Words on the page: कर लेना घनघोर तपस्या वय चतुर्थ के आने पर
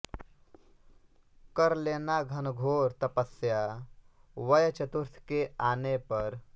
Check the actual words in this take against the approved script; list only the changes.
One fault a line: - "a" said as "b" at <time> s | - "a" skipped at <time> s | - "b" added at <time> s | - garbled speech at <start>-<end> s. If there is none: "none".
none